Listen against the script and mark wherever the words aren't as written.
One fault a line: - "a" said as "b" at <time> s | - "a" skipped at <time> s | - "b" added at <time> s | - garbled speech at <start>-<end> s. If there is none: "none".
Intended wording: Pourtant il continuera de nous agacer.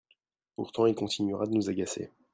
none